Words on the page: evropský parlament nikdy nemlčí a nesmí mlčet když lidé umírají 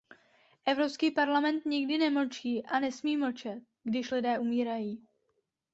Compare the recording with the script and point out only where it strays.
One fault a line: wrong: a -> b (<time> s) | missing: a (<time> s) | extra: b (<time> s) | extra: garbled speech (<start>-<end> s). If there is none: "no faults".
no faults